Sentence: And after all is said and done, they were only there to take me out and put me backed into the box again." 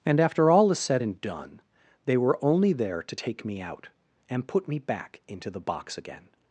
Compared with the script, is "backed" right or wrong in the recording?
wrong